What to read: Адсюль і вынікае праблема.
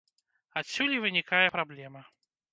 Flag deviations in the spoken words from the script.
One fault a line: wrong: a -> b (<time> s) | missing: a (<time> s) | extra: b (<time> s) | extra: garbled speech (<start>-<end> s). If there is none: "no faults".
no faults